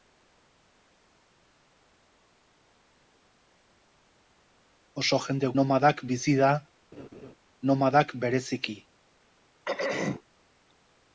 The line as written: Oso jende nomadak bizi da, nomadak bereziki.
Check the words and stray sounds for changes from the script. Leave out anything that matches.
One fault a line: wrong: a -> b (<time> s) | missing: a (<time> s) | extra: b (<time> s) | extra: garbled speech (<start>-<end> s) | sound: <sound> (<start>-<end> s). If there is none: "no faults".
sound: laugh (6.9-7.3 s)
sound: throat clearing (9.7-10.2 s)